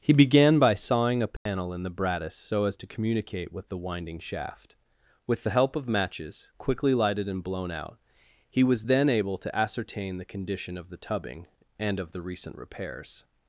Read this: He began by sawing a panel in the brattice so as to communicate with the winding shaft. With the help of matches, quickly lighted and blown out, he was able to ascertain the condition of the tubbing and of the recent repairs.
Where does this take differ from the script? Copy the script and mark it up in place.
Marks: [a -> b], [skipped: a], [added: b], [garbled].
He began by sawing a panel in the brattice so as to communicate with the winding shaft. With the help of matches, quickly lighted and blown out, he was [added: then] able to ascertain the condition of the tubbing and of the recent repairs.